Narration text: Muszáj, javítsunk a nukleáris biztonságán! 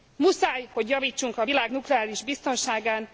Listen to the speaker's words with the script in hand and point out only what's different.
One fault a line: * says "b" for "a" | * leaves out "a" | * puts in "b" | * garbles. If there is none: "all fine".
* puts in "hogy"
* puts in "világ"